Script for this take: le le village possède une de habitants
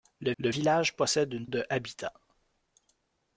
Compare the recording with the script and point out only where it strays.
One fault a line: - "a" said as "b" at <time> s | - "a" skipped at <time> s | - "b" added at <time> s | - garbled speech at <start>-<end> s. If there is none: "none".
none